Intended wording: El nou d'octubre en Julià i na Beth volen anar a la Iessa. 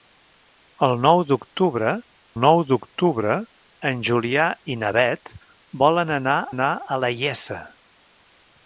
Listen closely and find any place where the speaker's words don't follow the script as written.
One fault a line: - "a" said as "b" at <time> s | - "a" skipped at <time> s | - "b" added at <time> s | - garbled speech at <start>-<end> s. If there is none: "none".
- "nou d'octubre" added at 2.4 s
- "anar" added at 6.5 s